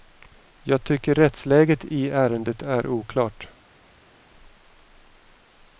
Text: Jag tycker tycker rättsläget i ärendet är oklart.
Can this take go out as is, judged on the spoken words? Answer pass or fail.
fail